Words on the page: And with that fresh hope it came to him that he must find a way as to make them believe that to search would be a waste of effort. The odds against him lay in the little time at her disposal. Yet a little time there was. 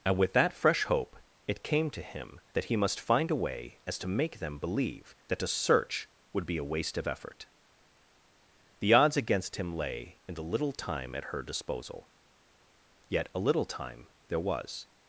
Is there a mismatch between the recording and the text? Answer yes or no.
no